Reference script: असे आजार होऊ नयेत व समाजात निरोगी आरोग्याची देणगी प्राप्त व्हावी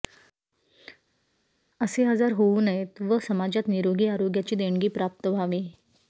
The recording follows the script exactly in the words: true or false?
true